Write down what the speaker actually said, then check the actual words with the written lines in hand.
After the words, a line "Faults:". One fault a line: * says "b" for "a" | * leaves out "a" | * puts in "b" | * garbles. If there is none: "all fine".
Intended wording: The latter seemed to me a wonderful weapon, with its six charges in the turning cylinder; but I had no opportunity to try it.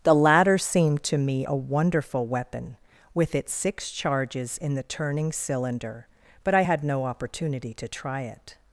The latter seemed to me a wonderful weapon, with its six charges in the turning cylinder; but I had no opportunity to try it.
Faults:
all fine